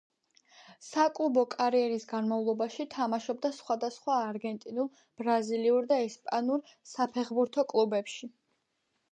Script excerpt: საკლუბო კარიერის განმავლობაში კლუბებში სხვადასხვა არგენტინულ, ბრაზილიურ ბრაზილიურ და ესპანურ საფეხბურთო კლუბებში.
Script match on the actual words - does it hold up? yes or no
no